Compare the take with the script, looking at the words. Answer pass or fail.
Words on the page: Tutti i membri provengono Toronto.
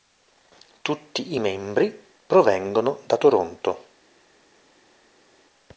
fail